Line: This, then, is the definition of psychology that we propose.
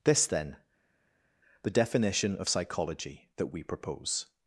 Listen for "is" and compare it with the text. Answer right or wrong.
wrong